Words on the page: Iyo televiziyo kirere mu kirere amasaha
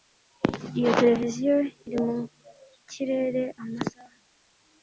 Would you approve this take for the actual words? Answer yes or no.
no